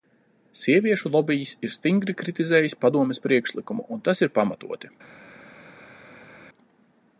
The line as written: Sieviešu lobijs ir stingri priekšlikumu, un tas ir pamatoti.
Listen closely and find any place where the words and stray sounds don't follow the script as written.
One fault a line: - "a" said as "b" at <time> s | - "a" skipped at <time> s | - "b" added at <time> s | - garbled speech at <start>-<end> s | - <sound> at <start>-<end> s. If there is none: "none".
- "kritizējis Padomes" added at 2.2 s